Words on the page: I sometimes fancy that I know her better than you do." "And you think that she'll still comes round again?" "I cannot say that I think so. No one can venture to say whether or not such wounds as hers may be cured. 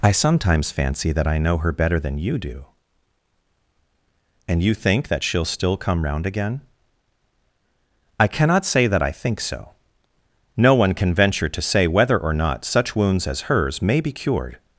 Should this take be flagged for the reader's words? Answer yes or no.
yes